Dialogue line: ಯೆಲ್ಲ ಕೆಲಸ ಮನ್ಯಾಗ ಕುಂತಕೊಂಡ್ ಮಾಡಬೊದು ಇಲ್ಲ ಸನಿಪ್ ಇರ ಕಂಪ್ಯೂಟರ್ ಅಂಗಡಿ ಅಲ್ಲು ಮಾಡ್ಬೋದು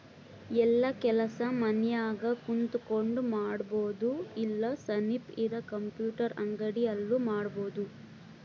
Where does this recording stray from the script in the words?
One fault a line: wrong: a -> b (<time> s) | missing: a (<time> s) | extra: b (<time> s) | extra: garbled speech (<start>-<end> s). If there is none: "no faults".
no faults